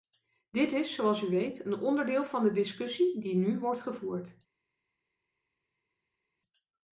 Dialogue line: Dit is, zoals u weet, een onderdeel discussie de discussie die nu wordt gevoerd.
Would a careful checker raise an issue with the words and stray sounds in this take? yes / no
yes